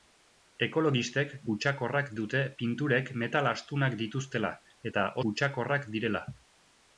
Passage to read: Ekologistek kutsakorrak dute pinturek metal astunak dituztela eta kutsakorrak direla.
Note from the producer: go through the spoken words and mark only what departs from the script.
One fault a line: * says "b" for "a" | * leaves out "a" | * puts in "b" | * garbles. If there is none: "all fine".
all fine